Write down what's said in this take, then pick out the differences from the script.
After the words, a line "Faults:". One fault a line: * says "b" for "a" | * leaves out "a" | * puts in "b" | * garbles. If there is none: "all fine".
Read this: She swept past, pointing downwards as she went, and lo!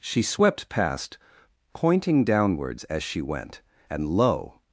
She swept past, pointing downwards as she went, and lo!
Faults:
all fine